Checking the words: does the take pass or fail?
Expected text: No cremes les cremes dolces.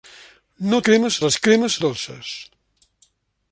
pass